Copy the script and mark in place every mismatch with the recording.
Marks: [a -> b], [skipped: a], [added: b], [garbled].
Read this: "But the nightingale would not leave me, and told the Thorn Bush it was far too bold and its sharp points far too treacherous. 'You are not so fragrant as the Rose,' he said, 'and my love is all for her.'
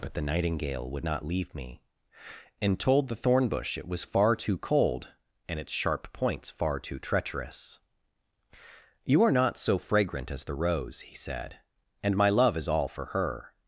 "But the nightingale would not leave me, and told the Thorn Bush it was far too [bold -> cold] and its sharp points far too treacherous. 'You are not so fragrant as the Rose,' he said, 'and my love is all for her.'